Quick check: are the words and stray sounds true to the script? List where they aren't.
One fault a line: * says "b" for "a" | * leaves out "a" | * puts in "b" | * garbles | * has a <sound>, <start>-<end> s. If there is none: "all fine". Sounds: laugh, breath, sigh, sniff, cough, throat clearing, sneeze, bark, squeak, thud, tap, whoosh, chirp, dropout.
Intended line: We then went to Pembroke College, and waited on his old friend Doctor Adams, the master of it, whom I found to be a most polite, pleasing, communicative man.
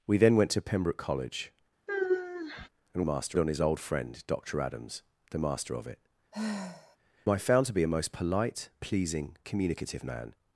* has a sigh, 1.9-2.7 s
* says "master" for "waited"
* leaves out "whom"
* has a sigh, 6.3-7.0 s